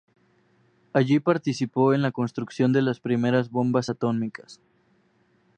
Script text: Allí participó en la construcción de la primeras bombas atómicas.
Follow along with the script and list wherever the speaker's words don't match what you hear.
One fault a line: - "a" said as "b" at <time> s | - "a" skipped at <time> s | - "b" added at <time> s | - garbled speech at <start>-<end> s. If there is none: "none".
- "la" said as "las" at 2.8 s